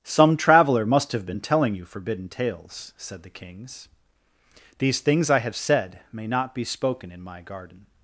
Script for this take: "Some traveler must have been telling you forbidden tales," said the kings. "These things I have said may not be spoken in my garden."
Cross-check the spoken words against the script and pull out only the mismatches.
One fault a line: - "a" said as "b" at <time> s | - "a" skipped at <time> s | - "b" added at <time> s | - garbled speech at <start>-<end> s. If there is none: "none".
none